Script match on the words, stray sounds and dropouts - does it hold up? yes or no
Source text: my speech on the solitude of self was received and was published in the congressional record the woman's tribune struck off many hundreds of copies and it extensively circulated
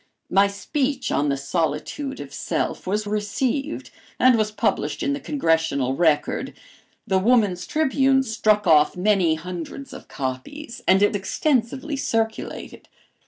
yes